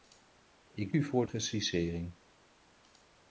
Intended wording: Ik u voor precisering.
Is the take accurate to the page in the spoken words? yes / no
yes